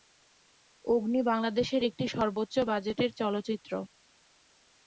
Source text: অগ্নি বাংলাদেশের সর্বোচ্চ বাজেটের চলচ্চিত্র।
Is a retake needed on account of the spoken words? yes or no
yes